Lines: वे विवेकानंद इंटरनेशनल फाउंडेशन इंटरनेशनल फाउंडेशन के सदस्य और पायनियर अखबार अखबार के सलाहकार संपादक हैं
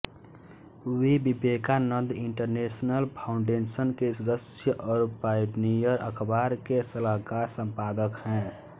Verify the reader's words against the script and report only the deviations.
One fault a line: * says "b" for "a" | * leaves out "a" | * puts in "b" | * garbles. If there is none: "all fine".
* leaves out "इंटरनेशनल फाउंडेशन"
* leaves out "अखबार"